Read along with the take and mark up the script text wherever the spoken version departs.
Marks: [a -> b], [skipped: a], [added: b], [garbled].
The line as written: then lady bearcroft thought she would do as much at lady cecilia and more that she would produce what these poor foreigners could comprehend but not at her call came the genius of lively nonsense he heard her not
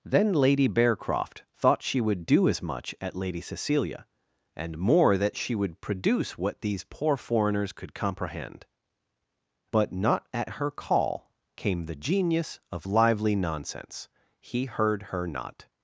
then lady bearcroft thought she would do as much at lady cecilia and more that she would produce what these poor foreigners could comprehend but not at her call came the genius of lively nonsense he heard her not